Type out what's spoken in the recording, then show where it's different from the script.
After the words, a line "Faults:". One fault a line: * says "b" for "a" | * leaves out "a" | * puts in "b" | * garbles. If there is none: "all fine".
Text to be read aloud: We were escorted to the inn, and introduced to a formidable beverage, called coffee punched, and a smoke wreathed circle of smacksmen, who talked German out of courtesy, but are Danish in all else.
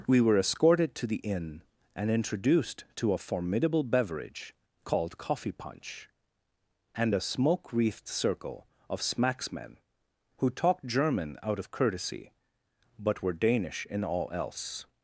We were escorted to the inn, and introduced to a formidable beverage, called coffee punch, and a smoke wreathed circle of smacksmen, who talked German out of courtesy, but were Danish in all else.
Faults:
* says "punch" for "punched"
* says "were" for "are"